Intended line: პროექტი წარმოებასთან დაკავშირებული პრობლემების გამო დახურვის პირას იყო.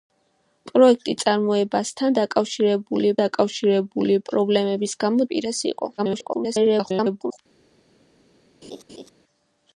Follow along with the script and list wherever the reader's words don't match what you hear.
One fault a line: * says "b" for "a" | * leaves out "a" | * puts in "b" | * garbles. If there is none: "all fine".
* puts in "დაკავშირებული"
* leaves out "დახურვის"
* garbles